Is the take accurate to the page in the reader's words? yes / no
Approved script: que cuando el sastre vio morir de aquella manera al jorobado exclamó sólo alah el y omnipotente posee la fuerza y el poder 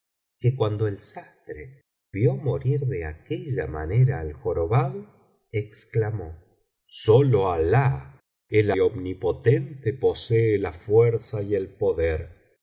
yes